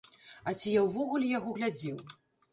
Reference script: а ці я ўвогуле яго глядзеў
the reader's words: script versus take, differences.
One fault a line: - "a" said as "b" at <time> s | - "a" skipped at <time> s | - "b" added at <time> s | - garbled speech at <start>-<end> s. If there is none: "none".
none